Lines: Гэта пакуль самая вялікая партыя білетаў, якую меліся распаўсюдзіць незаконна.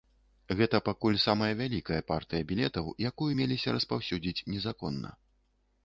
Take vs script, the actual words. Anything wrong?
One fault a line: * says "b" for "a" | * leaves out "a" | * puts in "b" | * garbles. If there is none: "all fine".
all fine